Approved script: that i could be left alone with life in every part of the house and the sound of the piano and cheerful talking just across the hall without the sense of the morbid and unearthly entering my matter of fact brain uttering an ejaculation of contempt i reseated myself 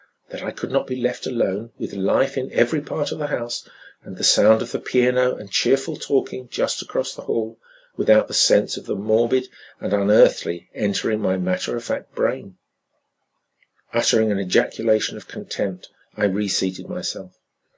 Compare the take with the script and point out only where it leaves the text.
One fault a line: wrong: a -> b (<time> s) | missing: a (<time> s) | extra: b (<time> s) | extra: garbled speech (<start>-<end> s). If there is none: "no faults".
extra: not (0.7 s)